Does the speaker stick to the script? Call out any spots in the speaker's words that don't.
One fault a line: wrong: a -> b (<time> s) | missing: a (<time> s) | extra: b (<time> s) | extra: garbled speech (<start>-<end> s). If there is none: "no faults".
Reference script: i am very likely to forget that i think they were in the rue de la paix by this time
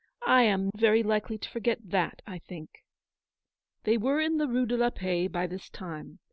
no faults